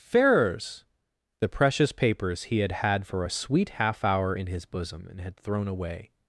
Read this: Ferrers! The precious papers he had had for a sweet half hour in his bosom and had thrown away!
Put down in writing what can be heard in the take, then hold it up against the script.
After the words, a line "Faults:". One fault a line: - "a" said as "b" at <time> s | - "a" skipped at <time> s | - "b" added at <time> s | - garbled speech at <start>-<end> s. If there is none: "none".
Ferrers! The precious papers he had had for a sweet half hour in his bosom and had thrown away!
Faults:
none